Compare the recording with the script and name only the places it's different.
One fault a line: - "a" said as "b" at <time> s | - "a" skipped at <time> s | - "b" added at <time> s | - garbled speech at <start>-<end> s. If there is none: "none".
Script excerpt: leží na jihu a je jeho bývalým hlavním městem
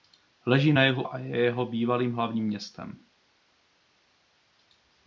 none